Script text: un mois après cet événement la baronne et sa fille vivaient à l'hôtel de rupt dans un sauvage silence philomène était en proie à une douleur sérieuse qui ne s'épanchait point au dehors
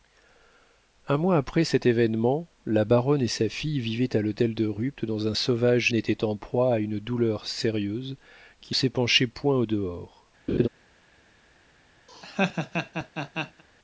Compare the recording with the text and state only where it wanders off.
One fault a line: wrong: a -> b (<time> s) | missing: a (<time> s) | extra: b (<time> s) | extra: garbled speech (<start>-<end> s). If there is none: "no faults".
missing: silence philomène (5.9 s)
missing: ne (8.7 s)